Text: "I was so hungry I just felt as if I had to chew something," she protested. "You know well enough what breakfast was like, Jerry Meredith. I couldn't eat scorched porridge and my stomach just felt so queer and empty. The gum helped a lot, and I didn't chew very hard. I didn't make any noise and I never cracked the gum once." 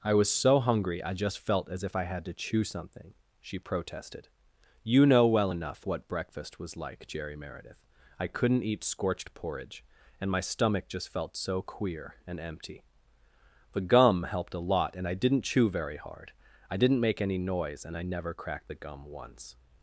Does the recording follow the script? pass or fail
pass